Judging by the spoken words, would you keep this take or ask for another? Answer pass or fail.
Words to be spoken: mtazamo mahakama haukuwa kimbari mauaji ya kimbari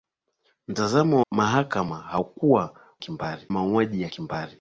pass